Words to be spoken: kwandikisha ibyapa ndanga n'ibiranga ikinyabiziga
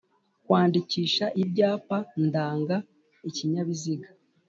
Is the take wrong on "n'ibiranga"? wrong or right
wrong